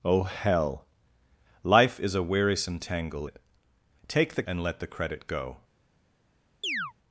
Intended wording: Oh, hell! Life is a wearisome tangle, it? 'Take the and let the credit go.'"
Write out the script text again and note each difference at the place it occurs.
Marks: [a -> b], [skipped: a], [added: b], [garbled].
Oh, hell! Life is a wearisome tangle, it? 'Take the and let the credit go.'"